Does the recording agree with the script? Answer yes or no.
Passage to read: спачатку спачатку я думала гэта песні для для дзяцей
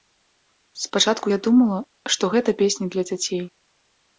no